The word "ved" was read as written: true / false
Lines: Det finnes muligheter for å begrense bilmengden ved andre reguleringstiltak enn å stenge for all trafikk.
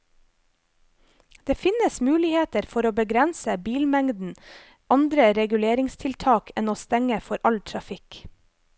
false